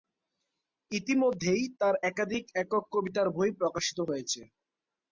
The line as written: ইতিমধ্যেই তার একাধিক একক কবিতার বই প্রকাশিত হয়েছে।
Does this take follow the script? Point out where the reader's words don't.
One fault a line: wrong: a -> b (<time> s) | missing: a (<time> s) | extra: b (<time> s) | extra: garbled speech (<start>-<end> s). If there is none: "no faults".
no faults